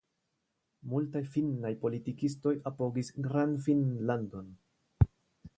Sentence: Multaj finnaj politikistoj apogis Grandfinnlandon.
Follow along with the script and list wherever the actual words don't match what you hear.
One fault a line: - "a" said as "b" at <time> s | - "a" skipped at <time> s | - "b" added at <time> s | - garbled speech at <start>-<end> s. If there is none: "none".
none